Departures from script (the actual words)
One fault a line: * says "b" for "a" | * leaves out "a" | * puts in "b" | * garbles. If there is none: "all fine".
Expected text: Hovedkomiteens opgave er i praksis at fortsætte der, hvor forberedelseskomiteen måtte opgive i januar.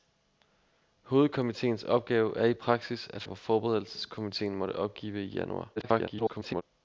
* leaves out "fortsætte der"
* garbles